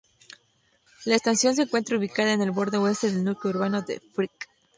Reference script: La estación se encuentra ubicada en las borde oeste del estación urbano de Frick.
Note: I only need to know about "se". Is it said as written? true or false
true